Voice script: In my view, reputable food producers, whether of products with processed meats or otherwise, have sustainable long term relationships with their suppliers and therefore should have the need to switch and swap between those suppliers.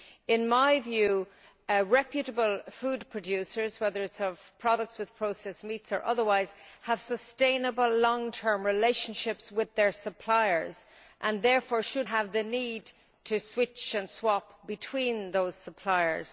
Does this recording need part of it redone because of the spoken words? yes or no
no